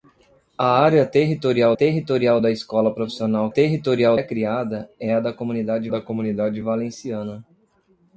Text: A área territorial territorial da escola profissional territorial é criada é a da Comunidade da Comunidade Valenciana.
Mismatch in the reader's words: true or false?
false